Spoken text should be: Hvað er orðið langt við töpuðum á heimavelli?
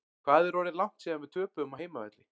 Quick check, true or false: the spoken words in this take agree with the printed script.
false